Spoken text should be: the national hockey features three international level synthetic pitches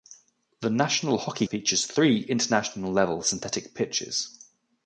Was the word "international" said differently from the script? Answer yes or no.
no